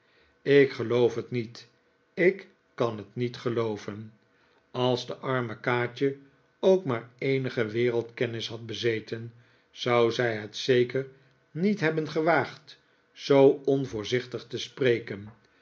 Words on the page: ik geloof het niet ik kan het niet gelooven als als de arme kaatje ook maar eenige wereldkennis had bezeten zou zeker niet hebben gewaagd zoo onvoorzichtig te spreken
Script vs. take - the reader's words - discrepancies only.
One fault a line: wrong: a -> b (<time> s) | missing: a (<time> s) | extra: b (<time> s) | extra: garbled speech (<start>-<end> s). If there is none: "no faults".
missing: als (5.1 s)
extra: zij het (10.1 s)